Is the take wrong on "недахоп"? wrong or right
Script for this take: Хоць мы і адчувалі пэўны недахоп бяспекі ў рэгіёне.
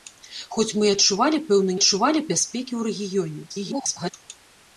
wrong